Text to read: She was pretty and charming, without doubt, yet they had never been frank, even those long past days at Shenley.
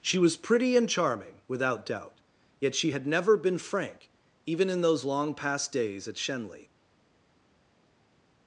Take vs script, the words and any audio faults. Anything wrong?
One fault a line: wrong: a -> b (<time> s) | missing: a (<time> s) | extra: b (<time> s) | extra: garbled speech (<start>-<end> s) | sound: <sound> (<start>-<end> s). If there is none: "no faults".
wrong: they -> she (2.7 s)
extra: in (4.7 s)